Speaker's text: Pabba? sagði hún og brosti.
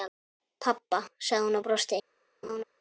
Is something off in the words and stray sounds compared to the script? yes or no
yes